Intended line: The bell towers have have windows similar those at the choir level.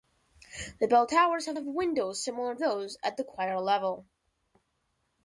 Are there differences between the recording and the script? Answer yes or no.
no